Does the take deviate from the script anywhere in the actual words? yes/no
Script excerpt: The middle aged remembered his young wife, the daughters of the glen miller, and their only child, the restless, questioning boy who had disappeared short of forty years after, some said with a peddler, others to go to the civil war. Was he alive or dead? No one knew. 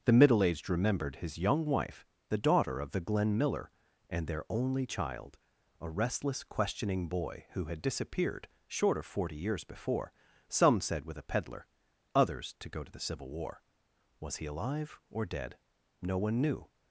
yes